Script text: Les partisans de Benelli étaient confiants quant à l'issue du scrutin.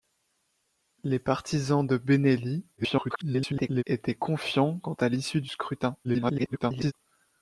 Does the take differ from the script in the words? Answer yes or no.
yes